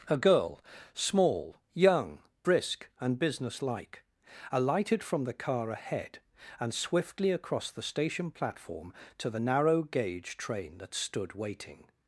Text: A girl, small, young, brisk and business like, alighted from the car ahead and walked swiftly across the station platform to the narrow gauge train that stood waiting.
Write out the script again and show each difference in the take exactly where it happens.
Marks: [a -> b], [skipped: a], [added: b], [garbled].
A girl, small, young, brisk and business like, alighted from the car ahead and [skipped: walked] swiftly across the station platform to the narrow gauge train that stood waiting.